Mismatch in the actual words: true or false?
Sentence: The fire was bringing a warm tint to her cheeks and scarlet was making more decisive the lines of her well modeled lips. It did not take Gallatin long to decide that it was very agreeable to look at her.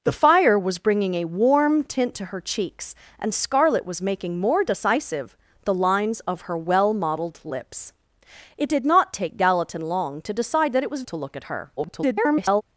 true